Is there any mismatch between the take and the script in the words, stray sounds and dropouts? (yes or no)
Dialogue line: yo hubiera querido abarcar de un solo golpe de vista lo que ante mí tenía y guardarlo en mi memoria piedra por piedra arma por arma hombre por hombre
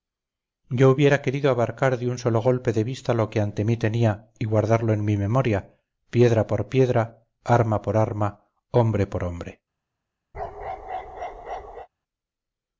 yes